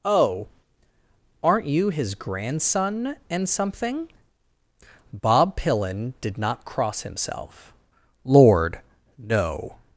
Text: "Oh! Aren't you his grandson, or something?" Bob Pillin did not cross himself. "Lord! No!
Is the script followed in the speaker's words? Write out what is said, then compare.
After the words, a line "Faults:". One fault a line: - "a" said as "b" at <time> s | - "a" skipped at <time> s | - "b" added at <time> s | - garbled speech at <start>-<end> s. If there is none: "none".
"Oh! Aren't you his grandson, and something?" Bob Pillin did not cross himself. "Lord! No!
Faults:
- "or" said as "and" at 3.3 s